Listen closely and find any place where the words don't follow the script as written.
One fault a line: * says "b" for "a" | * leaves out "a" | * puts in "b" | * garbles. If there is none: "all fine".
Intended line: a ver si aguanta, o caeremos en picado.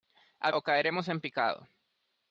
* leaves out "ver si aguanta"